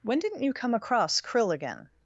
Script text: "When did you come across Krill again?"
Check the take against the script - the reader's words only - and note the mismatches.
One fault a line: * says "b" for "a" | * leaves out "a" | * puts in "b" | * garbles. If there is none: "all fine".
* says "didn't" for "did"